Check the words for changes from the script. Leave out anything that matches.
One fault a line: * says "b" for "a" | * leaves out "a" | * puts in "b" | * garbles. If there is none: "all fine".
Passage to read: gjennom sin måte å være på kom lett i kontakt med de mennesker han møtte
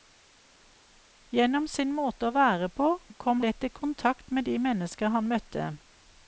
all fine